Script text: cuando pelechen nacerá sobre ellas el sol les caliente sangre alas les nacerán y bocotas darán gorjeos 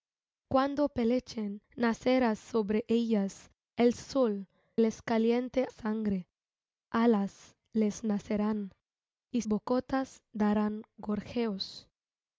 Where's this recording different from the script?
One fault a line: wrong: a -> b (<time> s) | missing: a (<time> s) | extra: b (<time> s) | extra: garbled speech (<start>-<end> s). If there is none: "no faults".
no faults